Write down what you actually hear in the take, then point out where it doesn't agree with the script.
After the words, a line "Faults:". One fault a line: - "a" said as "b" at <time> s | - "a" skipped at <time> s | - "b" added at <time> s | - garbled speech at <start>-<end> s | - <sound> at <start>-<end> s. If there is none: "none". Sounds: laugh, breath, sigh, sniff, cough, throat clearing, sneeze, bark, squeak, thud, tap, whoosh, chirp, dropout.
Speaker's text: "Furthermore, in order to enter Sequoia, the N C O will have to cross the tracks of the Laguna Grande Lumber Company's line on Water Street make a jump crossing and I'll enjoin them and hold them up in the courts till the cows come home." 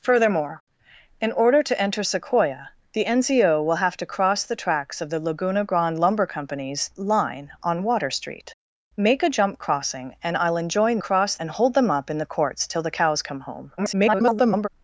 "Furthermore, in order to enter Sequoia, the N C O will have to cross the tracks of the Laguna Grande Lumber Company's line on Water Street make a jump crossing and I'll enjoin cross and hold them up in the courts till the cows come home." [garbled]
Faults:
- "them" said as "cross" at 11.0 s
- garbled speech at 13.8-14.7 s